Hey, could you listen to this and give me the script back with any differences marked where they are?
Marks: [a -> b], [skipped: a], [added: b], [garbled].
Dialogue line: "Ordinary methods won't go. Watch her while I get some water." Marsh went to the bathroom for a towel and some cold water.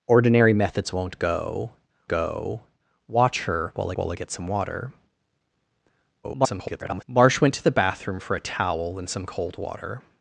"Ordinary methods won't go. [added: go] Watch her while [added: while] I get some water." [garbled] Marsh went to the bathroom for a towel and some cold water.